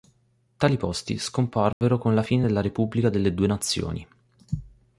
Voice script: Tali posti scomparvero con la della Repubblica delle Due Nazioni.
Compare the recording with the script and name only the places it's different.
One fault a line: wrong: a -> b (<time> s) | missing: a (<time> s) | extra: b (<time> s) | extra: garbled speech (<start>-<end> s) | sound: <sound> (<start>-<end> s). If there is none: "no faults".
sound: dropout (1.7-1.8 s)
extra: fine (2.2 s)